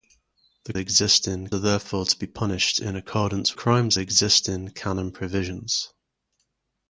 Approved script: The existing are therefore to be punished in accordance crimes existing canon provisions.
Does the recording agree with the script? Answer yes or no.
yes